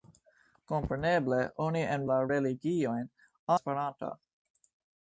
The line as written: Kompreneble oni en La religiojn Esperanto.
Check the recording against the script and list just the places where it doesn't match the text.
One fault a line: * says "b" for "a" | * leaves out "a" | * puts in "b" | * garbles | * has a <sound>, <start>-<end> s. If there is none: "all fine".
all fine